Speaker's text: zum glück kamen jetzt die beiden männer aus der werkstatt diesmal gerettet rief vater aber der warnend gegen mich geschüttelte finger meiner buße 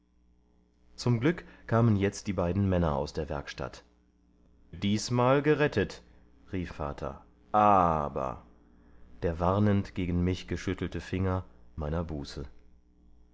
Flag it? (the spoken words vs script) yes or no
no